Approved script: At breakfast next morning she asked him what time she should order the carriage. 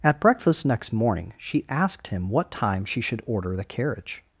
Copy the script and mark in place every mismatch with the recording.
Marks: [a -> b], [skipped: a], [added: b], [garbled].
At breakfast next morning she asked him what time she should order the carriage.